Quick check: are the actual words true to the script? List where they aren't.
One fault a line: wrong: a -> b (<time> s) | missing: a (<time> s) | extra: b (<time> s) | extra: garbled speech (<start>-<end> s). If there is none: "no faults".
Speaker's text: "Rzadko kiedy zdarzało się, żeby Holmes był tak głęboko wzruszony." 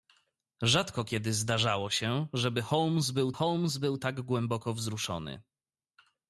extra: Holmes był (3.3 s)